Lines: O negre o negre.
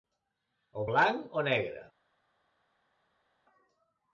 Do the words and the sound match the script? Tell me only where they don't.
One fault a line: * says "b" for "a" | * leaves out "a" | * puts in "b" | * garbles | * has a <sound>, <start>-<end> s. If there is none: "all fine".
* says "blanc" for "negre"